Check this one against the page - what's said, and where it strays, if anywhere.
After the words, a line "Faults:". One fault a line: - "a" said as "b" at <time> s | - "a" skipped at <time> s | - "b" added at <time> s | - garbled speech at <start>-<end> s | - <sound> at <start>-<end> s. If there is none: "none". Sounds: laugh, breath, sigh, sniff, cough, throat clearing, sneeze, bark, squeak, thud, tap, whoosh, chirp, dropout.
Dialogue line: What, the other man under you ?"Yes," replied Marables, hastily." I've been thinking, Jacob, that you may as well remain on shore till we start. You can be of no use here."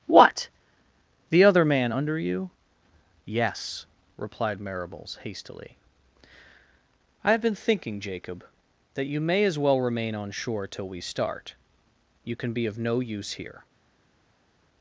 What, the other man under you ?"Yes," replied Marables, hastily." I've been thinking, Jacob, that you may as well remain on shore till we start. You can be of no use here."
Faults:
none